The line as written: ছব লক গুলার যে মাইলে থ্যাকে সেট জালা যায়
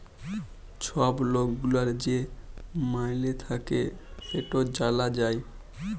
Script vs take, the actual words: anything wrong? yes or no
no